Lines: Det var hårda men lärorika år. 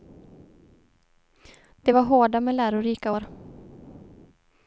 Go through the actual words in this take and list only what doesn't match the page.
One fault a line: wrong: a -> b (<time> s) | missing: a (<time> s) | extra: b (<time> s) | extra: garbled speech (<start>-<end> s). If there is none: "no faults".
no faults